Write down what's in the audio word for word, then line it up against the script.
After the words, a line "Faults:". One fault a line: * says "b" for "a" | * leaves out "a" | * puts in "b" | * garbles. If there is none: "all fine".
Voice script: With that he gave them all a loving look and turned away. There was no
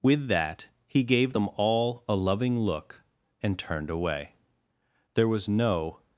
With that he gave them all a loving look and turned away. There was no
Faults:
all fine